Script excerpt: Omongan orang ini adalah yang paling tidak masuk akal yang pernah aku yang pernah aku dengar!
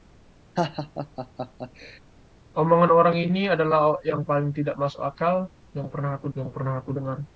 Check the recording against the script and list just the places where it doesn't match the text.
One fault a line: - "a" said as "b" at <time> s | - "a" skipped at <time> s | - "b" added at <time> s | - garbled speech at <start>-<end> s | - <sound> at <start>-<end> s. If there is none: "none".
- laugh at 0.6-2.0 s